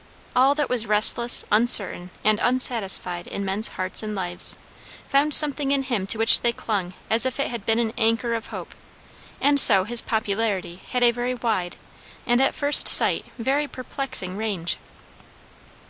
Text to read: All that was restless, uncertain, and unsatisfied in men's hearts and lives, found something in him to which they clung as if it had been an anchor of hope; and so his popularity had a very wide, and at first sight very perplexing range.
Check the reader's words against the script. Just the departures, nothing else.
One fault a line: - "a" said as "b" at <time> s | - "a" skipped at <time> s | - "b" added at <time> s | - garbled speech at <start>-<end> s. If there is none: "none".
none